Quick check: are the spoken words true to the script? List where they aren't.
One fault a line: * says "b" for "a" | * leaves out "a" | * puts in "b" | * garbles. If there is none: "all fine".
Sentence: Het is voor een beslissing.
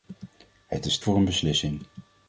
all fine